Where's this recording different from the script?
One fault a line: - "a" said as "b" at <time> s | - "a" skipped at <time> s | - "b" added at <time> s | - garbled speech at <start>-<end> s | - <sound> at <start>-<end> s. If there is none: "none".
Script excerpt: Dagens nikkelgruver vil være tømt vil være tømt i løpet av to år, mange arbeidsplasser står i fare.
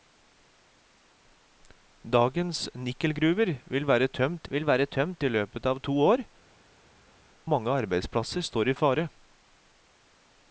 none